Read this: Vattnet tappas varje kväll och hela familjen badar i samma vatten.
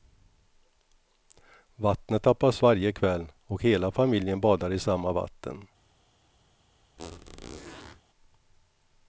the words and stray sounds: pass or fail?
fail